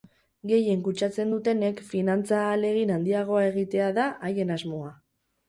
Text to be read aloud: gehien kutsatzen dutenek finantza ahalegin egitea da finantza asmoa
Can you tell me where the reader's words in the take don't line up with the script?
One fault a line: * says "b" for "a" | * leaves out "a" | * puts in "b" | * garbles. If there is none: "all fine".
* puts in "handiagoa"
* says "haien" for "finantza"